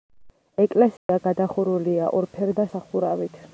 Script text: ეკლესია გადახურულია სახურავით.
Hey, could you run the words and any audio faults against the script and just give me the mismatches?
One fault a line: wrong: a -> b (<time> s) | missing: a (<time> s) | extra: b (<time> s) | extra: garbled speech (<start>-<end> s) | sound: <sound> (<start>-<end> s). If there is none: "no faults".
sound: dropout (1.0-1.1 s)
extra: ორფერდა (2.2 s)